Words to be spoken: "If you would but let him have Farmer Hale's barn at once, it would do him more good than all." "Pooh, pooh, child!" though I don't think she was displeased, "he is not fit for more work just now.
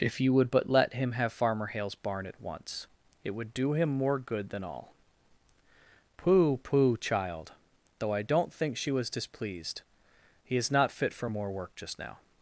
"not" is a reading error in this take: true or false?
false